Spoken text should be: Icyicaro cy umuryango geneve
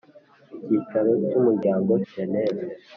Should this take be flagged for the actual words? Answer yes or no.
no